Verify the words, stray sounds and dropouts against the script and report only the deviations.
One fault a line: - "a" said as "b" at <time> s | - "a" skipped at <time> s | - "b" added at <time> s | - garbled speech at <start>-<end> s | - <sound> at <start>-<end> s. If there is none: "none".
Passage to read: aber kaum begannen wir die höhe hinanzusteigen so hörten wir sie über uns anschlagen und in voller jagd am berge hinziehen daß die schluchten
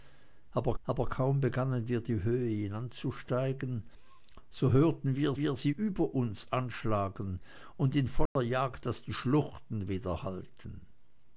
- "aber" added at 0.8 s
- "wir" added at 5.3 s
- dropout at 8.3-8.4 s
- "am berge hinziehen" skipped at 8.8 s